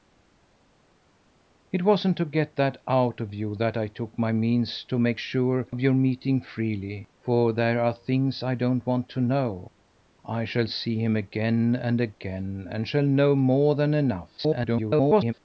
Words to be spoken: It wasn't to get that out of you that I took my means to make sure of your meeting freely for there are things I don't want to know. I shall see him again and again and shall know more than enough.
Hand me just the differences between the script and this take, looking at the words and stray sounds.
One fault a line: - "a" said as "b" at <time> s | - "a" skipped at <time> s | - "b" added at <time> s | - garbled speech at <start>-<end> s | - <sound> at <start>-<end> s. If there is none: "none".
- garbled speech at 14.4-15.3 s